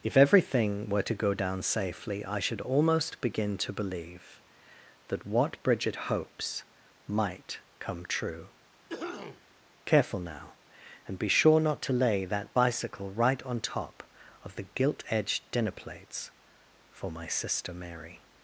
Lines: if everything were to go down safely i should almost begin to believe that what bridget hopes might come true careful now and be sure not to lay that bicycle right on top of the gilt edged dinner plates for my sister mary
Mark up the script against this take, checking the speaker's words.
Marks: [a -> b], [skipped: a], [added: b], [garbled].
if everything were to go down safely i should almost begin to believe that what bridget hopes might come true careful now and be sure not to lay that bicycle right on top of the gilt edged dinner plates for my sister mary